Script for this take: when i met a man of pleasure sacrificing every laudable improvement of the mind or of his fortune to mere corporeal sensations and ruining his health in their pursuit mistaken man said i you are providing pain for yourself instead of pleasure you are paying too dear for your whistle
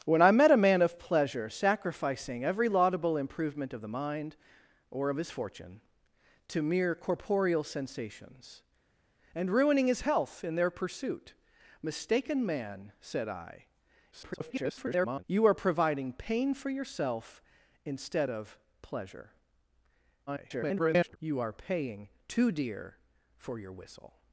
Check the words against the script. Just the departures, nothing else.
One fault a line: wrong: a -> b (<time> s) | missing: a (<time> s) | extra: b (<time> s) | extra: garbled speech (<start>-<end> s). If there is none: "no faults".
extra: garbled speech (14.1-15.2 s)
extra: garbled speech (20.3-21.2 s)